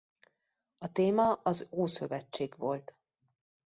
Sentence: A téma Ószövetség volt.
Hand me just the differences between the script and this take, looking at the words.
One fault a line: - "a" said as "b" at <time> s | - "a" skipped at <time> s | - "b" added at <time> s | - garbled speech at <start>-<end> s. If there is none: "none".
- "az" added at 1.3 s